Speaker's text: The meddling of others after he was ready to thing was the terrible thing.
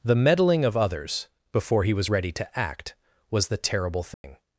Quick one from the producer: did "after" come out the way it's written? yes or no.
no